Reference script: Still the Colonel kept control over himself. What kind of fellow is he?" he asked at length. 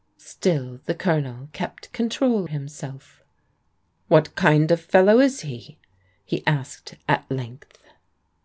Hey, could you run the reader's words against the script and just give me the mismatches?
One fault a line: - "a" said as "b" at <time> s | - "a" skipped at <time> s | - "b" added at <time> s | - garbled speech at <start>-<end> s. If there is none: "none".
- "over" skipped at 2.5 s